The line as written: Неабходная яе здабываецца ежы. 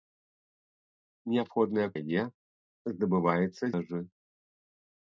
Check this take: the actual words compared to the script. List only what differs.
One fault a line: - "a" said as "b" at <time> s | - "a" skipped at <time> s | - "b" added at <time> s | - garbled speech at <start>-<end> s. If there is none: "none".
none